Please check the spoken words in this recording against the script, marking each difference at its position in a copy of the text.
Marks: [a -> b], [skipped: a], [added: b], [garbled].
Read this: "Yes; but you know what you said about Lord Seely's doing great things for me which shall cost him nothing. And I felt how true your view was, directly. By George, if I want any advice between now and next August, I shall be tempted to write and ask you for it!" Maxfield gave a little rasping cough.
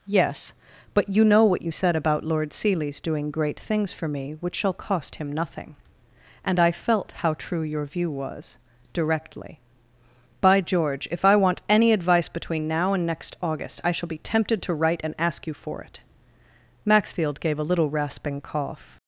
"Yes; but you know what you said about Lord Seely's doing great things for me which shall cost him nothing. And I felt how true your view was, directly. By George, if I want any advice between now and next August, I shall be tempted to write and ask you for it!" Maxfield gave a little rasping cough.